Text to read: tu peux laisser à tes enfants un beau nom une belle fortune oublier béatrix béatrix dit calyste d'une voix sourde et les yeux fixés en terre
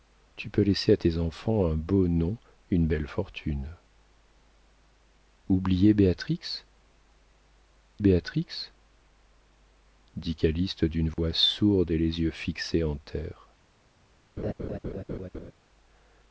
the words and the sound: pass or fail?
fail